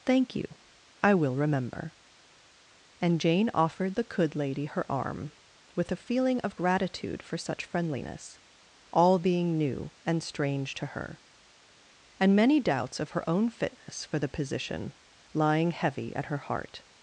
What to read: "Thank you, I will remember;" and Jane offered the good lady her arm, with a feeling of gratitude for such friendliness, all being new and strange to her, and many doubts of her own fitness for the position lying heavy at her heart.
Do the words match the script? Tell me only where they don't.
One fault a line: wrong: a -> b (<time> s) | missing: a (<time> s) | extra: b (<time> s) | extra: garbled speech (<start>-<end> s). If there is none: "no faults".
wrong: good -> could (4.0 s)